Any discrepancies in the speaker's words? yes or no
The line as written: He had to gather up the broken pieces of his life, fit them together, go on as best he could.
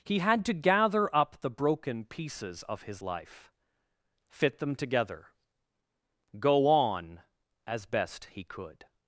no